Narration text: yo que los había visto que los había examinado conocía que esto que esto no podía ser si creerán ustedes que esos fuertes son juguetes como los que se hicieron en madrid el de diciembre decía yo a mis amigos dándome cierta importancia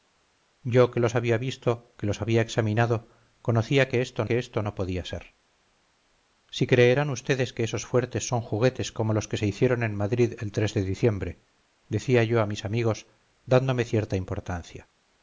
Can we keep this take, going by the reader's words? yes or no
yes